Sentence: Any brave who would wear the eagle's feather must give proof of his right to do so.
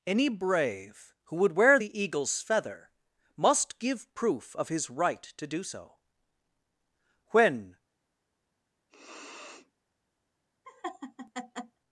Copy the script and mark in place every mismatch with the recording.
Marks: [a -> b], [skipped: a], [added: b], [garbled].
Any brave who would wear the eagle's feather must give proof of his right to do so. [added: When]